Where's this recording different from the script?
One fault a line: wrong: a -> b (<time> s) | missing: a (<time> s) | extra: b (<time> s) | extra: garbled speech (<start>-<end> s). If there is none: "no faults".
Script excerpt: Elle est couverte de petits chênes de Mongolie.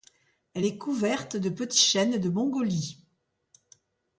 no faults